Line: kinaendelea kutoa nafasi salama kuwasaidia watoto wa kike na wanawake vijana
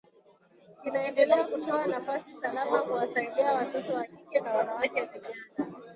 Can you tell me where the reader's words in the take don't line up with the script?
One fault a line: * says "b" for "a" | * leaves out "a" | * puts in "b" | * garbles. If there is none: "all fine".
all fine